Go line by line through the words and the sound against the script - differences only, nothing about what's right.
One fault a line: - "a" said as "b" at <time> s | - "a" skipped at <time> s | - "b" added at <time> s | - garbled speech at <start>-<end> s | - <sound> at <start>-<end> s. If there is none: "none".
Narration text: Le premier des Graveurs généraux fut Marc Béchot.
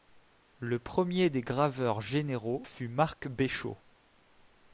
none